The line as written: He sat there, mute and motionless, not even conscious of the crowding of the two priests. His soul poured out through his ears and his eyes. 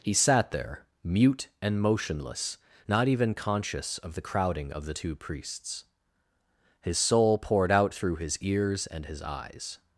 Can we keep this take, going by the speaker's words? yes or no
yes